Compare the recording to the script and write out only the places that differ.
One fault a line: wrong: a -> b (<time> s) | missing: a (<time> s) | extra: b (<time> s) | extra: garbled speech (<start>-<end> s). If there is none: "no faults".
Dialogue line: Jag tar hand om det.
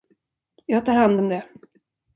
no faults